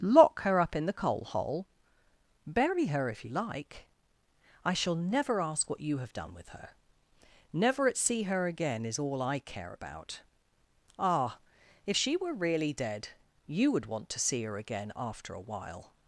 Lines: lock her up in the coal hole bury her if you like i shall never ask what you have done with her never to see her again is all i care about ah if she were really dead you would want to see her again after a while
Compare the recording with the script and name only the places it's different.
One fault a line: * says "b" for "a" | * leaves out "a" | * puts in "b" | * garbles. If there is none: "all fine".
* says "at" for "to"